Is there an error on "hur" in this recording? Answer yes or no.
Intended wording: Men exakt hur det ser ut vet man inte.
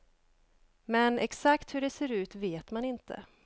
no